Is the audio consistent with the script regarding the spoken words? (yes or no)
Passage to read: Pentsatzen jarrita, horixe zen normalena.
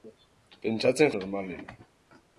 no